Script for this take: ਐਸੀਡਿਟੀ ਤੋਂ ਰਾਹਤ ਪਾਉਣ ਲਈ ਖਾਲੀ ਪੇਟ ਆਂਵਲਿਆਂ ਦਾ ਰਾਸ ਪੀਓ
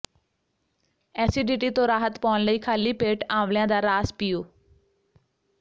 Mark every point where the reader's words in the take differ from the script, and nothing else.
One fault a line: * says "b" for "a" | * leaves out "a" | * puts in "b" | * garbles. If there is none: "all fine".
all fine